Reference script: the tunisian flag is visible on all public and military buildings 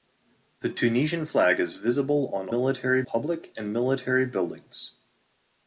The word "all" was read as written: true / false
false